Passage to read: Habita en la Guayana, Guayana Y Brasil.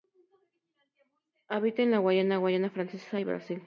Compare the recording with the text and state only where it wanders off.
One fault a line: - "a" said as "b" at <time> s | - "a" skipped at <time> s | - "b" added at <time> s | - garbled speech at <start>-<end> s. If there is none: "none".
- "Francesa" added at 2.7 s